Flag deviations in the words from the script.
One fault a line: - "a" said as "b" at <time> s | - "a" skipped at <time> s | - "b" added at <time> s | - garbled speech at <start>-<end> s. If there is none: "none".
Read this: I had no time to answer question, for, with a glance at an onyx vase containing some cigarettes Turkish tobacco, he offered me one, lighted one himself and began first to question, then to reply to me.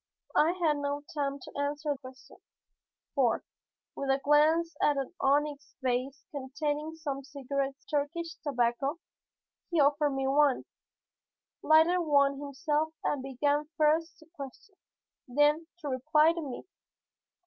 none